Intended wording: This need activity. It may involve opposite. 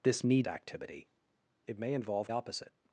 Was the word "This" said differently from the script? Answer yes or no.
no